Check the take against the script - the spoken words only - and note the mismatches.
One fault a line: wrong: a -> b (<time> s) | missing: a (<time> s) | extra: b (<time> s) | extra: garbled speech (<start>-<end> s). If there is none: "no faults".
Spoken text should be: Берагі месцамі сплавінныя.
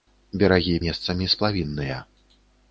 no faults